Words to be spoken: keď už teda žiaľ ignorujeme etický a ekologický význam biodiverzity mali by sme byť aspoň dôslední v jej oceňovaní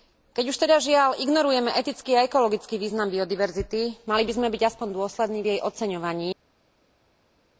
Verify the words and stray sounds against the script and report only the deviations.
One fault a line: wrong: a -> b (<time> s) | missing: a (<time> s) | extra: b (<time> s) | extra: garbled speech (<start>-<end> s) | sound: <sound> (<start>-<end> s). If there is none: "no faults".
no faults